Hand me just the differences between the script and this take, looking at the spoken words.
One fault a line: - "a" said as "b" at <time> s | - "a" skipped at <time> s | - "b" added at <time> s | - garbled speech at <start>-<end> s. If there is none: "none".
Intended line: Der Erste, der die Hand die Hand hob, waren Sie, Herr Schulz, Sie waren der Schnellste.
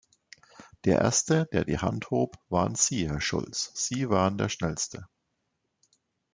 - "die Hand" skipped at 2.1 s